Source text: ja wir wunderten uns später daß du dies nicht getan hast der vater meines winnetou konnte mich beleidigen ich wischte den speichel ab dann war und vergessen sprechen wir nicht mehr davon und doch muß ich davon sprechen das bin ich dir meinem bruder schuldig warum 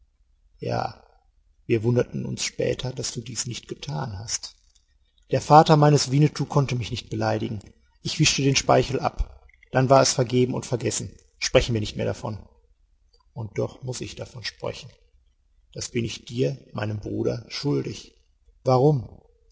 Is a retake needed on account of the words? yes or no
yes